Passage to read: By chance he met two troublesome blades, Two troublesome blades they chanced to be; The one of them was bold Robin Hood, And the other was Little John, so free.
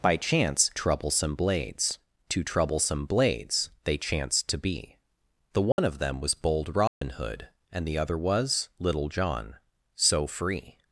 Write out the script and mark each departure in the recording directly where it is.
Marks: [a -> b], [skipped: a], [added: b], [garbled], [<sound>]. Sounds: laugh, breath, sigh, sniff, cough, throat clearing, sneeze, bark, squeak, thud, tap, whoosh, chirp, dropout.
By chance [skipped: he met two] troublesome blades, Two troublesome blades they chanced to be; The one [dropout] of them was bold Robin [dropout] Hood, And the other was Little John, so free.